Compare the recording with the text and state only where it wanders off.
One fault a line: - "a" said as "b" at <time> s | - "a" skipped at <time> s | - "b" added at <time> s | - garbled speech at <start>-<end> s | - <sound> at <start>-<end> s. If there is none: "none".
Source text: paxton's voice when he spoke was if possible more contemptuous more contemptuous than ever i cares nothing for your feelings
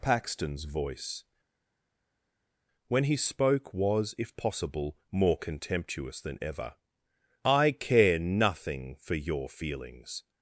- "more contemptuous" skipped at 6.2 s
- "cares" said as "care" at 7.7 s